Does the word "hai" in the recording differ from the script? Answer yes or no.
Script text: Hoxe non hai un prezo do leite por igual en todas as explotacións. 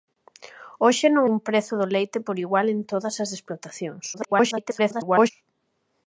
yes